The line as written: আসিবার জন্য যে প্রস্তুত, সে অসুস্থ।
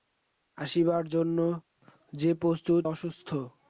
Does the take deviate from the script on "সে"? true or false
true